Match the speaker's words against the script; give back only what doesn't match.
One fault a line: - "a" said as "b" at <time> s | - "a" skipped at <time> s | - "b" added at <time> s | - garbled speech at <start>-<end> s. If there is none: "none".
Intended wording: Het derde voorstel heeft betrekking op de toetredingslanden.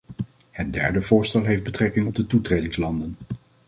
none